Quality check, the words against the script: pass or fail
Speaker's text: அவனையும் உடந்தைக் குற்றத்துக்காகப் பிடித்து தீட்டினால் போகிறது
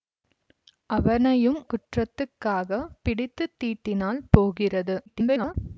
fail